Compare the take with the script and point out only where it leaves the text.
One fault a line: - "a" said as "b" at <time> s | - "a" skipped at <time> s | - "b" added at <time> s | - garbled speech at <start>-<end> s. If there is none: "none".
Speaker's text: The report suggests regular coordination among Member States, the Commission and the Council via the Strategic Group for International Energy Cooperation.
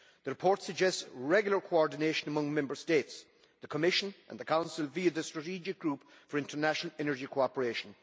none